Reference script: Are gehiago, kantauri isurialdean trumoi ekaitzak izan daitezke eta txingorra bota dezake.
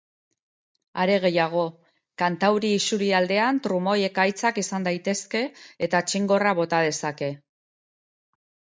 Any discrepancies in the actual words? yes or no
no